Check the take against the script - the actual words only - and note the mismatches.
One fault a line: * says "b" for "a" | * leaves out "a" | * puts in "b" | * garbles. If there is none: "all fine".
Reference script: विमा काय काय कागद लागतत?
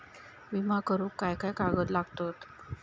* puts in "करुक"